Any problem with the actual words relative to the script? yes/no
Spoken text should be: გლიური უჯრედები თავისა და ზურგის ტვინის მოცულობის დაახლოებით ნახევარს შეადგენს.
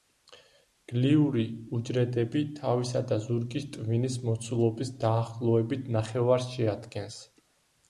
no